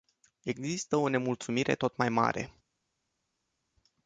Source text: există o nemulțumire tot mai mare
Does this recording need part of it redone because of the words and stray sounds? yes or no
no